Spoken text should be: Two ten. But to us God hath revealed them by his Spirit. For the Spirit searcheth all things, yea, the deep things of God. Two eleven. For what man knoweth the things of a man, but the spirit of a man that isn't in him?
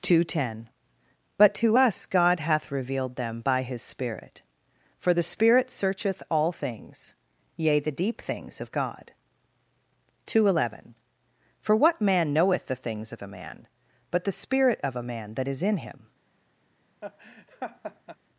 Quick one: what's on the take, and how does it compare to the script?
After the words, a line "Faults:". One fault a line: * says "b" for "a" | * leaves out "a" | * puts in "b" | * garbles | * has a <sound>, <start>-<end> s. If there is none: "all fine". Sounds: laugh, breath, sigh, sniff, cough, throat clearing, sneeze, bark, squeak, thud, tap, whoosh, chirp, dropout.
Two ten. But to us God hath revealed them by his Spirit. For the Spirit searcheth all things, yea, the deep things of God. Two eleven. For what man knoweth the things of a man, but the spirit of a man that is in him?
Faults:
* says "is" for "isn't"
* has a laugh, 17.0-18.2 s